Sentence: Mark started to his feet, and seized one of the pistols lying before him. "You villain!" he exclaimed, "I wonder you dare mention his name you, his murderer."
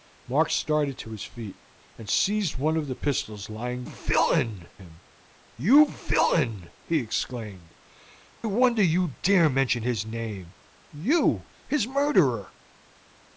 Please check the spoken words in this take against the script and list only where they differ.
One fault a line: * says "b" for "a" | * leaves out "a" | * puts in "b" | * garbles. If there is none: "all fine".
* says "villain" for "before"
* leaves out "I"